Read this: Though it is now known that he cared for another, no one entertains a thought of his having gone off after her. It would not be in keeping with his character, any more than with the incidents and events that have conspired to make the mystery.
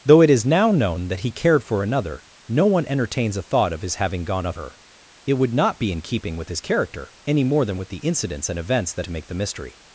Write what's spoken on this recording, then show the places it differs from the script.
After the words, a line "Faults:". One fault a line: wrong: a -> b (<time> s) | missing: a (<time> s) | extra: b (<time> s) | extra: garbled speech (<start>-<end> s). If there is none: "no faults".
Though it is now known that he cared for another, no one entertains a thought of his having gone off her. It would not be in keeping with his character, any more than with the incidents and events that to make the mystery.
Faults:
missing: after (4.6 s)
missing: have conspired (9.1 s)